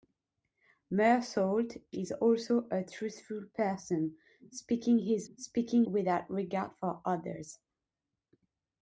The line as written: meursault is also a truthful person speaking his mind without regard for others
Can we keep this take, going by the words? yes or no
no